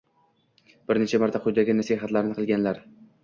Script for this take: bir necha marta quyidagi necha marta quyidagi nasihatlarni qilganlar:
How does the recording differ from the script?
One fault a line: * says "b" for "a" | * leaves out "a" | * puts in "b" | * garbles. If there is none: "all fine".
* leaves out "necha marta quyidagi"